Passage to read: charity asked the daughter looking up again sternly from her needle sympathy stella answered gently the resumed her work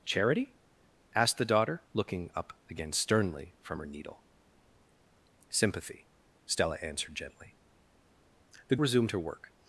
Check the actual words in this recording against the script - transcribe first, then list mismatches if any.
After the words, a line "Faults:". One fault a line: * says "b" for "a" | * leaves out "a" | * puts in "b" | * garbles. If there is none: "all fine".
charity asked the daughter looking up again sternly from her needle sympathy stella answered gently the resumed her work
Faults:
all fine